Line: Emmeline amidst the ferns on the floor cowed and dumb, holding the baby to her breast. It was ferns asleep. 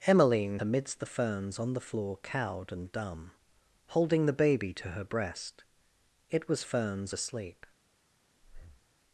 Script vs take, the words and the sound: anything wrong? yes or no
yes